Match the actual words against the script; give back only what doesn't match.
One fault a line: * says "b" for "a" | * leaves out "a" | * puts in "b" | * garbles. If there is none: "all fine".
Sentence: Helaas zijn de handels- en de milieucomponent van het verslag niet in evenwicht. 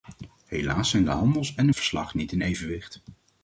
* leaves out "milieucomponent van het"